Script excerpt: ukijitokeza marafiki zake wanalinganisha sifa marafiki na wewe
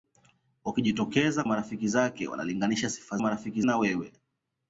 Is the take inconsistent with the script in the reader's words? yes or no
no